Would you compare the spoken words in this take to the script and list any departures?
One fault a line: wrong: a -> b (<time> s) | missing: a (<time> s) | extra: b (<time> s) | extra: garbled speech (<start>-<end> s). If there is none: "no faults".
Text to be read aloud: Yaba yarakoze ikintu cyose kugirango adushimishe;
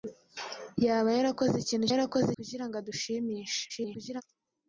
wrong: cyose -> yarakoze (1.9 s)
extra: garbled speech (3.7-4.2 s)